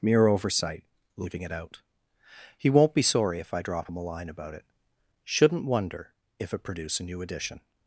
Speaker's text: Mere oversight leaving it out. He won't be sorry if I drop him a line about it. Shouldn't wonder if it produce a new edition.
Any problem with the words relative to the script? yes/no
no